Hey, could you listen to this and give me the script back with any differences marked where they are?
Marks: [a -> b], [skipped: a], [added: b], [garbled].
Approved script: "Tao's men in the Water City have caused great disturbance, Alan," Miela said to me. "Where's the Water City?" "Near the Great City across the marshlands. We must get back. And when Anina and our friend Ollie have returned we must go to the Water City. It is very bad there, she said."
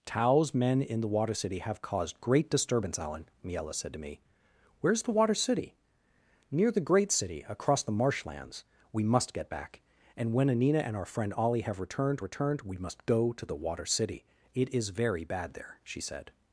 "Tao's men in the Water City have caused great disturbance, Alan," Miela said to me. "Where's the Water City?" "Near the Great City across the marshlands. We must get back. And when Anina and our friend Ollie have returned [added: returned] we must go to the Water City. It is very bad there, she said."